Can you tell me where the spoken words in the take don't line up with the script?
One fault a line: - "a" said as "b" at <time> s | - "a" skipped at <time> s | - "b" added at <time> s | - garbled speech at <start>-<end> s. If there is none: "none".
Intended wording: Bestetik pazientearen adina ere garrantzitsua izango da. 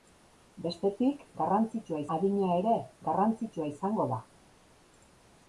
- "pazientearen" said as "garrantzitsua" at 1.4 s